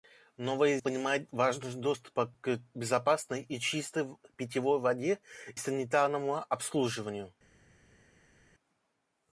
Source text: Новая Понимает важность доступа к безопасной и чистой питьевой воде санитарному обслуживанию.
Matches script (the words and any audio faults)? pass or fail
pass